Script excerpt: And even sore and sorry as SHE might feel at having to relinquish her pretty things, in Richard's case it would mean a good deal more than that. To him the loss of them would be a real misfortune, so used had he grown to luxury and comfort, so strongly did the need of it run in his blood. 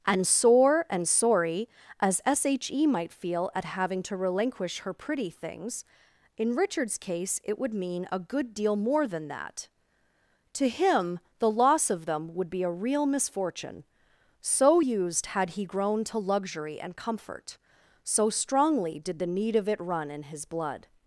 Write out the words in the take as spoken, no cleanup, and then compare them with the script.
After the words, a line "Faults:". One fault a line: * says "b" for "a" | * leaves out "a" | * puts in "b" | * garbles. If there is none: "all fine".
And sore and sorry as SHE might feel at having to relinquish her pretty things, in Richard's case it would mean a good deal more than that. To him the loss of them would be a real misfortune, so used had he grown to luxury and comfort, so strongly did the need of it run in his blood.
Faults:
* leaves out "even"